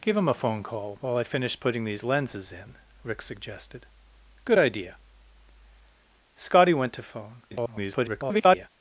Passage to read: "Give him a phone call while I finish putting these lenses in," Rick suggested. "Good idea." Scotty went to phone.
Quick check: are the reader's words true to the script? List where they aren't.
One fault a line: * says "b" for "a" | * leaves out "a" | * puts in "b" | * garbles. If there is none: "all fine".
* garbles